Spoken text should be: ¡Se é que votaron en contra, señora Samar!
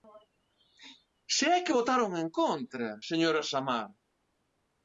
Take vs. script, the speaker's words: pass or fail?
pass